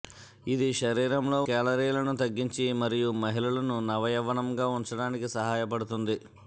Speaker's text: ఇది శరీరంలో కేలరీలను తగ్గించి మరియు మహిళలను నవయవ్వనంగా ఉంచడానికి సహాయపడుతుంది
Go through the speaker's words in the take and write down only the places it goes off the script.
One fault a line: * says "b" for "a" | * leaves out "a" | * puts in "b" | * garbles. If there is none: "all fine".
all fine